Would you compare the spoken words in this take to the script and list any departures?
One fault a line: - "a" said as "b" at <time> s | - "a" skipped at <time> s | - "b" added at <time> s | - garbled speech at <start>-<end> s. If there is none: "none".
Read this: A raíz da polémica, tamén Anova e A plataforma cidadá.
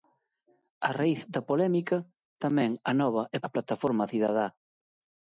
none